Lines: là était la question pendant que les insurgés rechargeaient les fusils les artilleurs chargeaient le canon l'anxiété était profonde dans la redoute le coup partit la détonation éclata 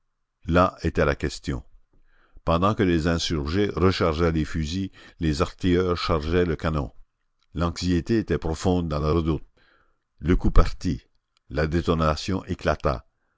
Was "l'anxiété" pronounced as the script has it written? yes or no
yes